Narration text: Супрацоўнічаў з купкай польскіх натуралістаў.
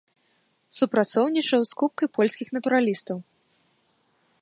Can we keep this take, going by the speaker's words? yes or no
yes